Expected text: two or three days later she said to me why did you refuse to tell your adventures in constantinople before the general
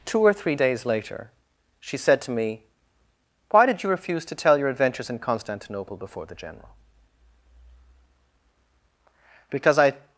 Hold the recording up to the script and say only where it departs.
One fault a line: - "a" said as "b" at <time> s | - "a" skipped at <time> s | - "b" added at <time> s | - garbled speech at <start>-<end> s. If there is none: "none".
- "because i" added at 9.5 s